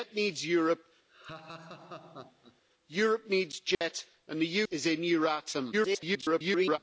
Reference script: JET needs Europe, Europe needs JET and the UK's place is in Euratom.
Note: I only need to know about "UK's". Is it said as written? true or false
false